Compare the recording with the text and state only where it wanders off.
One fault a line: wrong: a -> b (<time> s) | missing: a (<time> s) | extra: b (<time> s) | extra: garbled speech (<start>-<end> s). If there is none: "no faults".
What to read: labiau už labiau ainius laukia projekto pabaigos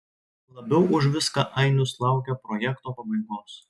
wrong: labiau -> viską (1.2 s)